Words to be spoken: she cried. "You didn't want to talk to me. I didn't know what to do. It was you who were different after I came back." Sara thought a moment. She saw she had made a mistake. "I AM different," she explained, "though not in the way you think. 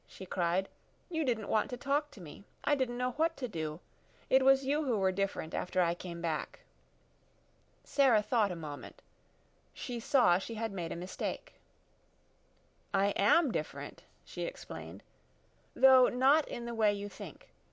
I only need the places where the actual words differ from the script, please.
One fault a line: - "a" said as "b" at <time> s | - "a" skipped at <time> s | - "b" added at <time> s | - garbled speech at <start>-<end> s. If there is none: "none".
none